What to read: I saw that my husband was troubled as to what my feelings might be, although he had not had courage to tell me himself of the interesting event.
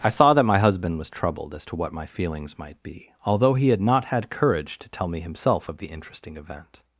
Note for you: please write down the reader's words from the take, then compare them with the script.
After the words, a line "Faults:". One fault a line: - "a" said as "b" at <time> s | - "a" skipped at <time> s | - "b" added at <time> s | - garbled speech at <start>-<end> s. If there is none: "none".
I saw that my husband was troubled as to what my feelings might be, although he had not had courage to tell me himself of the interesting event.
Faults:
none